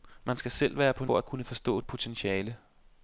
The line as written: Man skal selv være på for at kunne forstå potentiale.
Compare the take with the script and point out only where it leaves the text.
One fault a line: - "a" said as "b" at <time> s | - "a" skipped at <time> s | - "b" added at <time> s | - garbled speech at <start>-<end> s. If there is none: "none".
none